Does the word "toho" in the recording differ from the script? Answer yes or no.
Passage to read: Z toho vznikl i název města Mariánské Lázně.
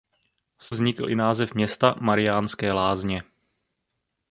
yes